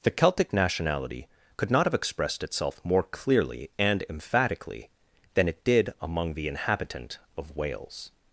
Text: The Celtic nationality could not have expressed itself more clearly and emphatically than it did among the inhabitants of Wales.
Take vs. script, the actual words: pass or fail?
fail